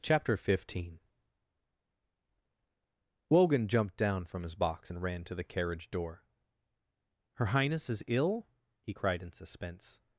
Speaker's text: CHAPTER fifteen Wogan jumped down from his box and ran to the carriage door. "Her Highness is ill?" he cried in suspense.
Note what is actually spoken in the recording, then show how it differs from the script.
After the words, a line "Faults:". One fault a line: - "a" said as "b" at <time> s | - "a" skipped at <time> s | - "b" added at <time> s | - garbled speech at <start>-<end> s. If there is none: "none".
CHAPTER fifteen Wogan jumped down from his box and ran to the carriage door. "Her Highness is ill?" he cried in suspense.
Faults:
none